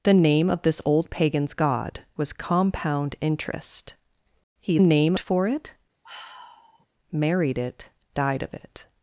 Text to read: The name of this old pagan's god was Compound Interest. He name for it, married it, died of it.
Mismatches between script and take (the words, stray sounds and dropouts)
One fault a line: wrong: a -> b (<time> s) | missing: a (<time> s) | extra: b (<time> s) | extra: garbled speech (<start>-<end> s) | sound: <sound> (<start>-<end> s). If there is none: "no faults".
sound: sigh (6.0-6.9 s)